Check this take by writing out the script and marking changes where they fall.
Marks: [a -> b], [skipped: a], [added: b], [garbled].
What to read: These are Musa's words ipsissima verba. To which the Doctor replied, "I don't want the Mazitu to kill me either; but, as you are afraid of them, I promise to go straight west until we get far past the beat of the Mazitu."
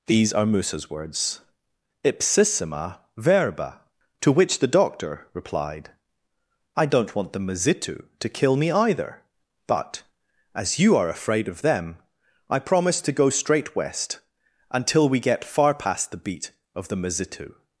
These are Musa's words ipsissima verba. To which the Doctor replied, "I don't want the Mazitu to kill me either; but, as you are afraid of them, I promise to go straight west until we get far past the beat of the Mazitu."